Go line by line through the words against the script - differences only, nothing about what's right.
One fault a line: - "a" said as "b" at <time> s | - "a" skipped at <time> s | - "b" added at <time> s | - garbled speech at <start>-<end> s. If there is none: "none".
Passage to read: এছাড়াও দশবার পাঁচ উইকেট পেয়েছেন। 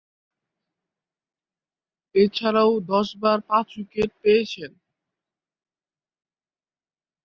none